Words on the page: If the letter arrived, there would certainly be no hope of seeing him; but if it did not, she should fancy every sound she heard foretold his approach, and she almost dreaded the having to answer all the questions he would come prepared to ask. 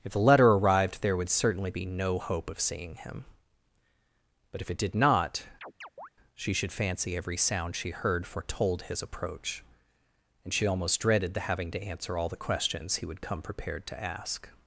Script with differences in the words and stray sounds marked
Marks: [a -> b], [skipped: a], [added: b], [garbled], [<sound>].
If the letter arrived, there would certainly be no hope of seeing him; but if it did not, [chirp] she should fancy every sound she heard foretold his approach, and she almost dreaded the having to answer all the questions he would come prepared to ask.